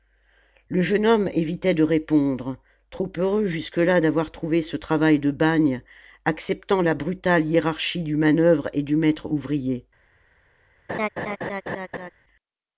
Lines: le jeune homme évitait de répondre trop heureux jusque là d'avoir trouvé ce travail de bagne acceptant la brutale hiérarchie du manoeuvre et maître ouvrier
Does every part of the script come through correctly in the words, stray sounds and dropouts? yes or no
no